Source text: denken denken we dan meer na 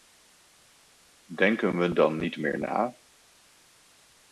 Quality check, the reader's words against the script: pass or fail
fail